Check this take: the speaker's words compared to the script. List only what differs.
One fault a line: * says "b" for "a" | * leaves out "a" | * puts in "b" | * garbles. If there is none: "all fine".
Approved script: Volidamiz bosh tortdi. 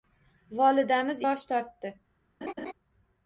all fine